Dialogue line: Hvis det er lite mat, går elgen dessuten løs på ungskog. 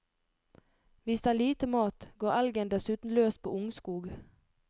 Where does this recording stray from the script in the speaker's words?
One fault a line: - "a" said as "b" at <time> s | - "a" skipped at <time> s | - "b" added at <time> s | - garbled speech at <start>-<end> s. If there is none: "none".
none